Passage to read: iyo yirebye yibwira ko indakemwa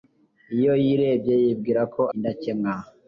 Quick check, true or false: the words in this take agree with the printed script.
true